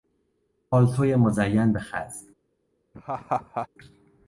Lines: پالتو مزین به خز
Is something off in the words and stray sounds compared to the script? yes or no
yes